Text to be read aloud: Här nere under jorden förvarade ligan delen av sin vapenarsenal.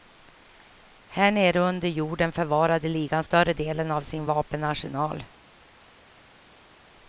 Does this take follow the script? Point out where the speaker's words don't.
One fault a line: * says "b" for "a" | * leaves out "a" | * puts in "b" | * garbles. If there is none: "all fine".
* puts in "större"